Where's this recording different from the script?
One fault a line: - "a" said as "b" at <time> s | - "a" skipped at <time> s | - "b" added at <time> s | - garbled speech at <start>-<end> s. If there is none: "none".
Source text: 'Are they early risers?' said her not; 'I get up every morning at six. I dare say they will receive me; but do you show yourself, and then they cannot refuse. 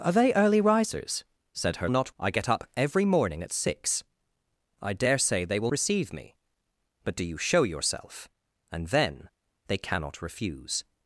none